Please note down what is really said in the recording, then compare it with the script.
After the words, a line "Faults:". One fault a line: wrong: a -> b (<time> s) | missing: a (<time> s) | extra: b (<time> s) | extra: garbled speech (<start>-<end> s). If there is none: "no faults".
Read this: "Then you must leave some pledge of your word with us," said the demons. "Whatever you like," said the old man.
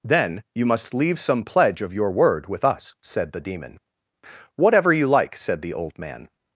"Then you must leave some pledge of your word with us," said the demon. "Whatever you like," said the old man.
Faults:
wrong: demons -> demon (3.4 s)